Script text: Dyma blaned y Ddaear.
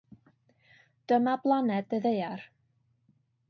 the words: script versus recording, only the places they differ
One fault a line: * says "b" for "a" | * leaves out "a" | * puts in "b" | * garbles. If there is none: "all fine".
all fine